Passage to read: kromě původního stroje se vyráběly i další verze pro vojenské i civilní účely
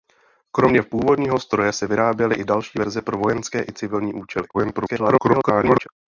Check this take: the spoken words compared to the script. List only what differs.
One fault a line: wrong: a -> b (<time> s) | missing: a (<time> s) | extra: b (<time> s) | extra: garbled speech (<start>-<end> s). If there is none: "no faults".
extra: garbled speech (4.5-5.9 s)